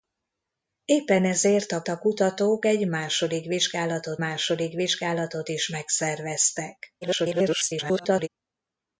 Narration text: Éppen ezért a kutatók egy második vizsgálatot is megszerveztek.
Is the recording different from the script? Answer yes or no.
yes